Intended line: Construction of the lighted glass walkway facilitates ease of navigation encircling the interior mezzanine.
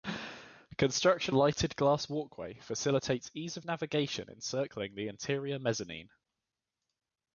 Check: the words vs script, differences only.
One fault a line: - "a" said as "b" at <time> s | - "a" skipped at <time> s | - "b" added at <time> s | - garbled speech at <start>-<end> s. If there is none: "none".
- "of the" skipped at 1.4 s